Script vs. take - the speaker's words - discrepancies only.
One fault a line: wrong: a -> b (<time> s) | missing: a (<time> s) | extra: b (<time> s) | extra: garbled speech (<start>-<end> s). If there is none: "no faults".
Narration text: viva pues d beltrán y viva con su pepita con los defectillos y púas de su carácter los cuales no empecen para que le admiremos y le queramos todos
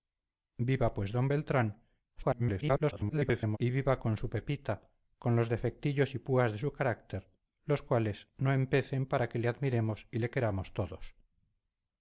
extra: garbled speech (2.2-3.6 s)